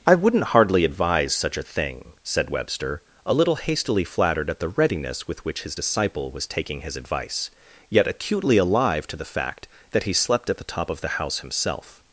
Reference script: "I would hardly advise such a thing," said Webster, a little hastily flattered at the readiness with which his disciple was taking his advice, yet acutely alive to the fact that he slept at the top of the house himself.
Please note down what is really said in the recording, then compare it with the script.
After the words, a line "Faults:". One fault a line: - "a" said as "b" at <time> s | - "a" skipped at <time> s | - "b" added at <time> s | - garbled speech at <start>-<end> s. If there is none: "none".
"I wouldn't hardly advise such a thing," said Webster, a little hastily flattered at the readiness with which his disciple was taking his advice, yet acutely alive to the fact that he slept at the top of the house himself.
Faults:
- "would" said as "wouldn't" at 0.1 s